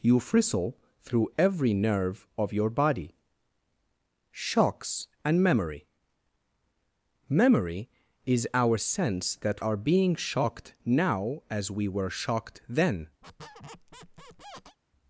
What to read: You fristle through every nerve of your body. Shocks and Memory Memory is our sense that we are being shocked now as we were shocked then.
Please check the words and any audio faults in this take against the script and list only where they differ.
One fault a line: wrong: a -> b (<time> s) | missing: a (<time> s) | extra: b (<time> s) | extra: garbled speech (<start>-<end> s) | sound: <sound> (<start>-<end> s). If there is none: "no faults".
missing: we (9.6 s)
sound: squeak (13.2-14.8 s)